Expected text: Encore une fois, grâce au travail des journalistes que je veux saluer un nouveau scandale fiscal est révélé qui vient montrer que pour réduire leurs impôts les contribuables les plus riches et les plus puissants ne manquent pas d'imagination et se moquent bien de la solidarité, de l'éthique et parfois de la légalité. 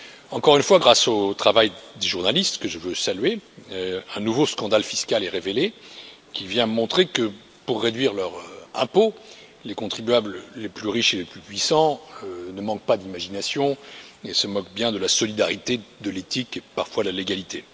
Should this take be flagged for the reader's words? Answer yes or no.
no